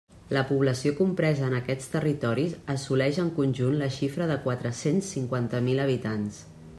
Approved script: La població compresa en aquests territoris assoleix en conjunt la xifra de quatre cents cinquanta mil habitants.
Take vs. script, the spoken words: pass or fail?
pass